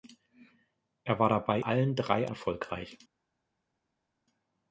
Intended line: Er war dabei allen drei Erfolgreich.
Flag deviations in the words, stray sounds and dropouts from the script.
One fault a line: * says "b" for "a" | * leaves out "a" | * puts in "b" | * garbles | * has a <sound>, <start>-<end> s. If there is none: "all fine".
all fine